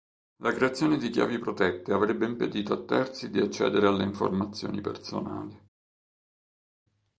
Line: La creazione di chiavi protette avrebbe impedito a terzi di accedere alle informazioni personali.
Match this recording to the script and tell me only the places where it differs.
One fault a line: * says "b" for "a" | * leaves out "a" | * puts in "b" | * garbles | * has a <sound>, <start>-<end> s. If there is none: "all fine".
all fine